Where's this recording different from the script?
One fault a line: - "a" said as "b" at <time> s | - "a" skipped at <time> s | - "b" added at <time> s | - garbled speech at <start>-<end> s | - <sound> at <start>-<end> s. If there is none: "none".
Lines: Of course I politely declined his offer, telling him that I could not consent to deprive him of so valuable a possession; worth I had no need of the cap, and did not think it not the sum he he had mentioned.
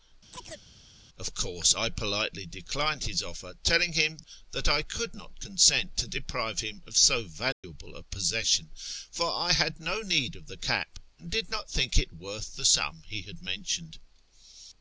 - chirp at 0.3-0.7 s
- dropout at 7.5-7.6 s
- "worth" said as "for" at 9.1 s
- "not" said as "worth" at 12.1 s
- "he" skipped at 13.2 s